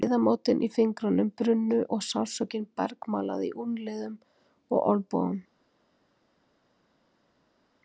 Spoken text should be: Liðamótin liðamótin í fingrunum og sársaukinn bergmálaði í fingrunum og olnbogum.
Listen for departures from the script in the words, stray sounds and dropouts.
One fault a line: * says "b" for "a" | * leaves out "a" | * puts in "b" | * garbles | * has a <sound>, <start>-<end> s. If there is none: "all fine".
* leaves out "liðamótin"
* puts in "brunnu"
* says "úlnliðum" for "fingrunum"